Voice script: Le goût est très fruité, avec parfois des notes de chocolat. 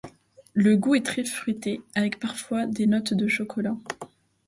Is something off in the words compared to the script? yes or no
no